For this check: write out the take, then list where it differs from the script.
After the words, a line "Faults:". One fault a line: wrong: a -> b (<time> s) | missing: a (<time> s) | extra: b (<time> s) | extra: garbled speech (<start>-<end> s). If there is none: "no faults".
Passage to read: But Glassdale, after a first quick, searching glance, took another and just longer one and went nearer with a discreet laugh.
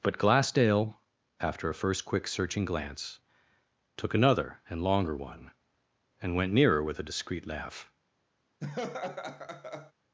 But Glassdale, after a first quick, searching glance, took another and longer one and went nearer with a discreet laugh.
Faults:
missing: just (4.8 s)